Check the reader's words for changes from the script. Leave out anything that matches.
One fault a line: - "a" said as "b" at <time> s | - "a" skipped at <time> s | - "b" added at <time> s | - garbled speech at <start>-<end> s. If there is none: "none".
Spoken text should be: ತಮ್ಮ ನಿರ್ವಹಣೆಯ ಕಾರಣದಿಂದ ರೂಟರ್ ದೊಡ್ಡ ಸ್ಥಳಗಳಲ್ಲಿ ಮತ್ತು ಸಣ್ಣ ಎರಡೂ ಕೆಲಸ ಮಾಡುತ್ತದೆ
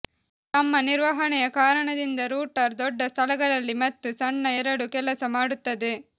none